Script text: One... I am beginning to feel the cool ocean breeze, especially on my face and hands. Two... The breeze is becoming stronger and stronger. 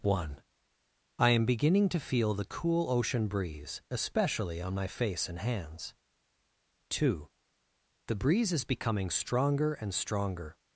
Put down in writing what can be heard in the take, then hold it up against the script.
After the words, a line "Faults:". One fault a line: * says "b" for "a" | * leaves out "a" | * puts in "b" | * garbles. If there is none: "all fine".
One... I am beginning to feel the cool ocean breeze, especially on my face and hands. Two... The breeze is becoming stronger and stronger.
Faults:
all fine